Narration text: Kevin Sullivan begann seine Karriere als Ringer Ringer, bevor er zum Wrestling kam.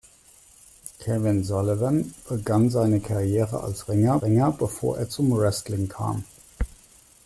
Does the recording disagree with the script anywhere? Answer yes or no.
no